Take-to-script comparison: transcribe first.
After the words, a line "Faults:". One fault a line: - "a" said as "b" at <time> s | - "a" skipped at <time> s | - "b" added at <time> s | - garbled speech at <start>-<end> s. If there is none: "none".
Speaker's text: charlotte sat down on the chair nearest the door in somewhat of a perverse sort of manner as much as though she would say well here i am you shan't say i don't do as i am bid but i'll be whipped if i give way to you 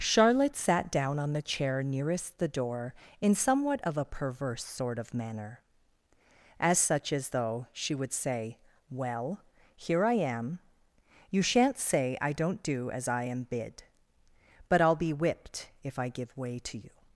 charlotte sat down on the chair nearest the door in somewhat of a perverse sort of manner as such as though she would say well here i am you shan't say i don't do as i am bid but i'll be whipped if i give way to you
Faults:
- "much" said as "such" at 6.8 s